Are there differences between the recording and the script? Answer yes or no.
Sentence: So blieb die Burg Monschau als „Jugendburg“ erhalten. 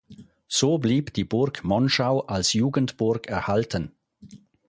no